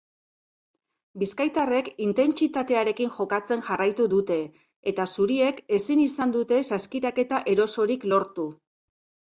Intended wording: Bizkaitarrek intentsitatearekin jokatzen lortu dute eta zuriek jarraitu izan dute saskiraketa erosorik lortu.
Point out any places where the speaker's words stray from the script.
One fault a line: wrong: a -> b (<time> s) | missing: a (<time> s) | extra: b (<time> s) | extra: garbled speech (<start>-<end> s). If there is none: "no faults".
wrong: lortu -> jarraitu (3.7 s)
wrong: jarraitu -> ezin (5.8 s)